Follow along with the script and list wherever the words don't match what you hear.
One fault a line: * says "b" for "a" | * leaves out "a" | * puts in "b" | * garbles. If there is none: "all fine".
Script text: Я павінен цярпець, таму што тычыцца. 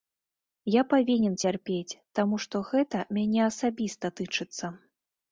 * puts in "гэта мяне асабіста"